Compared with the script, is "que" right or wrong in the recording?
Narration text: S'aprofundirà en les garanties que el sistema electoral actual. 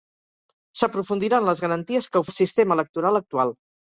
right